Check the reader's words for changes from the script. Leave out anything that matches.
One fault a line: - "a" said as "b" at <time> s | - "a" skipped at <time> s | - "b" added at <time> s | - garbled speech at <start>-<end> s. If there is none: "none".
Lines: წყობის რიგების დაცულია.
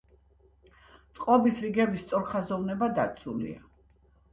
- "სწორხაზოვნება" added at 2.1 s